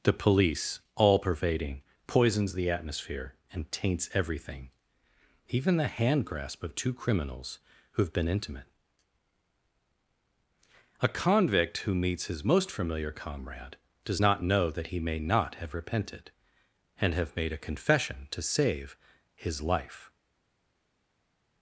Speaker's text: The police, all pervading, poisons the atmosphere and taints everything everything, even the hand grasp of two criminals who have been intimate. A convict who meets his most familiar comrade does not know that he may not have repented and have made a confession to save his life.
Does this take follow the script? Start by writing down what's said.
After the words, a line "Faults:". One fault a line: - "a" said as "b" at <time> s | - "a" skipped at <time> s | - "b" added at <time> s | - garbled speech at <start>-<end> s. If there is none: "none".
The police, all pervading, poisons the atmosphere and taints everything, even the hand grasp of two criminals who have been intimate. A convict who meets his most familiar comrade does not know that he may not have repented and have made a confession to save his life.
Faults:
- "everything" skipped at 4.7 s